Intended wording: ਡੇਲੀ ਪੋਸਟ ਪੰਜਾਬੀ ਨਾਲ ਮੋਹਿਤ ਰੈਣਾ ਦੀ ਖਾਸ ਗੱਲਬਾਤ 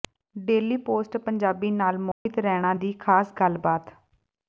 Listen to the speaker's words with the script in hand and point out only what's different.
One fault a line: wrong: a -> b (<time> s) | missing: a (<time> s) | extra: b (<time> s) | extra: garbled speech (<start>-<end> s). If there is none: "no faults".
no faults